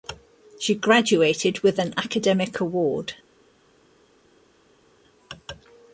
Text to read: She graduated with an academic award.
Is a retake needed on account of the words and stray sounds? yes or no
no